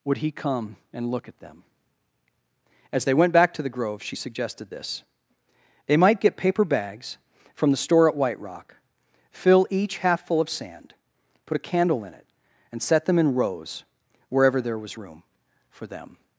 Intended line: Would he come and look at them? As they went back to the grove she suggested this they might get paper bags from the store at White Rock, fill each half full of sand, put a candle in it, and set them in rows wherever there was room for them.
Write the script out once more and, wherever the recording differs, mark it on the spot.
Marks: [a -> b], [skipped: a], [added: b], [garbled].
Would he come and look at them? As they went back to the grove she suggested this they might get paper bags from the store at White Rock, fill each half full of sand, put a candle in it, and set them in rows wherever there was room for them.